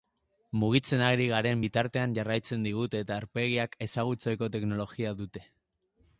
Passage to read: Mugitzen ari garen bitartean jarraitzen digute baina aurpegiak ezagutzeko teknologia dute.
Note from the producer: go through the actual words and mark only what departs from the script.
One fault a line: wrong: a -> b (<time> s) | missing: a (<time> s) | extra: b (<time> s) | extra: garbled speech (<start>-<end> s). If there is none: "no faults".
wrong: baina -> eta (3.1 s)